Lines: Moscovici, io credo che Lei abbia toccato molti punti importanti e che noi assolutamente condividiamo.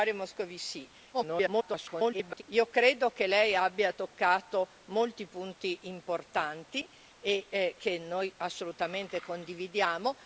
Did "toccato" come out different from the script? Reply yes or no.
no